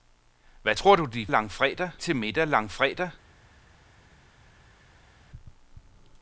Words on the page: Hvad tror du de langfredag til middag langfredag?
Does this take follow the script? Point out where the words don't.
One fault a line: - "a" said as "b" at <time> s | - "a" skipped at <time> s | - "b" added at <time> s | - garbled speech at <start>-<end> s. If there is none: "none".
none